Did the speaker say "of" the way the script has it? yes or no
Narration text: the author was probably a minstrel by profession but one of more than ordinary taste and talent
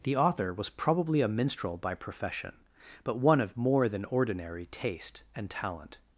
yes